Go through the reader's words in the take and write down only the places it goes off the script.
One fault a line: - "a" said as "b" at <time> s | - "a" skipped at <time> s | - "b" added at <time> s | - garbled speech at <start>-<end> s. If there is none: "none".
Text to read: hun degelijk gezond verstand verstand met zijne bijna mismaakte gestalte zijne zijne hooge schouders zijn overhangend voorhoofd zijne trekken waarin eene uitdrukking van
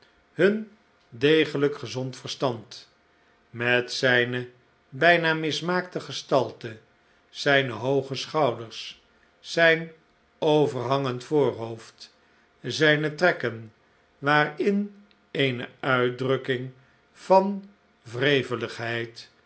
- "verstand" skipped at 2.9 s
- "zijne" skipped at 7.7 s